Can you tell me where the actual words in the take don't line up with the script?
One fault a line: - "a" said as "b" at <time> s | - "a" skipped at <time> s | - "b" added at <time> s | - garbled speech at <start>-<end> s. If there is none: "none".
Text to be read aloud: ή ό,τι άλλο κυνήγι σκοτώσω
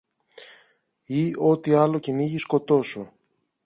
none